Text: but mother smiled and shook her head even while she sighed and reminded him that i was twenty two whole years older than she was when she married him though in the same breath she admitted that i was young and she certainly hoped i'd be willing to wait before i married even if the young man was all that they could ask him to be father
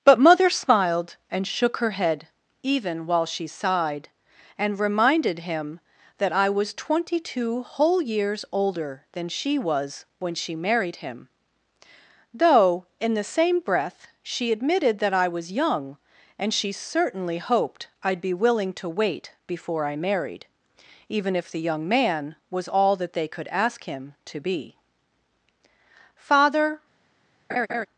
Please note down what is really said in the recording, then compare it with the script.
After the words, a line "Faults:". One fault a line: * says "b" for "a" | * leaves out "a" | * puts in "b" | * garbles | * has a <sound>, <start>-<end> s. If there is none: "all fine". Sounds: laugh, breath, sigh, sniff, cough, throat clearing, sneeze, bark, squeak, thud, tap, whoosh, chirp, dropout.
but mother smiled and shook her head even while she sighed and reminded him that i was twenty two whole years older than she was when she married him though in the same breath she admitted that i was young and she certainly hoped i'd be willing to wait before i married even if the young man was all that they could ask him to be father
Faults:
* has a laugh, 27.5-27.9 s